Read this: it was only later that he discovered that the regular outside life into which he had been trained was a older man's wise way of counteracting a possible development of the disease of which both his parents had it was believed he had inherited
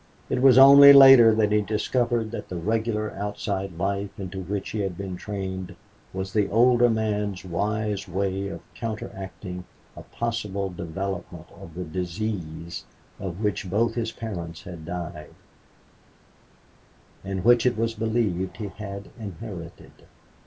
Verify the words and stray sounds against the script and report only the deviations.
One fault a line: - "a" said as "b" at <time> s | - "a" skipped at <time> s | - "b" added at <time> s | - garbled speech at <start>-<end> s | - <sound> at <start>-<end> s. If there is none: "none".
- "a" said as "the" at 6.3 s
- "died and which" added at 14.8 s